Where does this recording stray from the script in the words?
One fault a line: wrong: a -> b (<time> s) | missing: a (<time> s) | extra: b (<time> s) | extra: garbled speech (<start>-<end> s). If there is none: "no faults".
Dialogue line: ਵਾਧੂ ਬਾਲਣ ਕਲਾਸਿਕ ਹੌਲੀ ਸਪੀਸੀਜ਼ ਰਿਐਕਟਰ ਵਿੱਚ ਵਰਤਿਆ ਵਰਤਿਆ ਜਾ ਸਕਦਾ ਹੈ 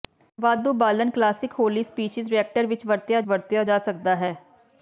no faults